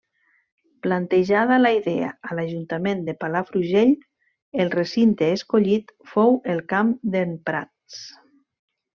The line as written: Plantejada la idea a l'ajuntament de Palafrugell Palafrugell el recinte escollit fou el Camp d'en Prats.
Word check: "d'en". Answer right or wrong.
right